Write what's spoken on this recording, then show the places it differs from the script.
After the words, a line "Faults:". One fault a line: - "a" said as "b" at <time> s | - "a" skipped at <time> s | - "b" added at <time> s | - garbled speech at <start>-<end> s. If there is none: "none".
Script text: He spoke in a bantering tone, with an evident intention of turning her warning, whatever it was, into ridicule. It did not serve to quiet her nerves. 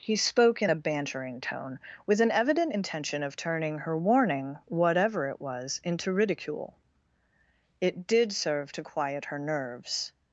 He spoke in a bantering tone, with an evident intention of turning her warning, whatever it was, into ridicule. It did serve to quiet her nerves.
Faults:
- "not" skipped at 8.3 s